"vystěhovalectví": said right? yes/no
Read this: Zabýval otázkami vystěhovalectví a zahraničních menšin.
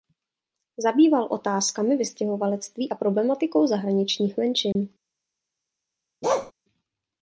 yes